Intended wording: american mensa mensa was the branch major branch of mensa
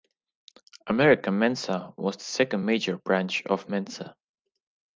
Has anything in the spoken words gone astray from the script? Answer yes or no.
yes